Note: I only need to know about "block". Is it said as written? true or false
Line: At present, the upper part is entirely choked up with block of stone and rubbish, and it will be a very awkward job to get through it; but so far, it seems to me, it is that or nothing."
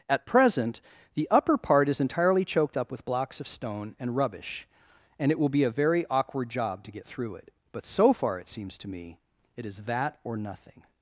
false